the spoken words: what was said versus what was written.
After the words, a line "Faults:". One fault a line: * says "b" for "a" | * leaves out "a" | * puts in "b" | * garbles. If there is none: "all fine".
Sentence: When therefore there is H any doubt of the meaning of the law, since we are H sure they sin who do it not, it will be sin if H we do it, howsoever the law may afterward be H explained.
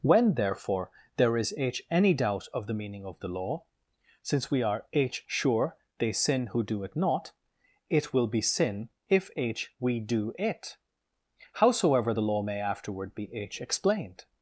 When therefore there is H any doubt of the meaning of the law, since we are H sure they sin who do it not, it will be sin if H we do it, howsoever the law may afterward be H explained.
Faults:
all fine